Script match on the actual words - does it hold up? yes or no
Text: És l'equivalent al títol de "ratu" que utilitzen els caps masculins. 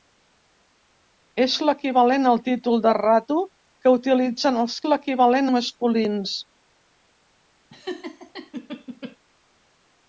no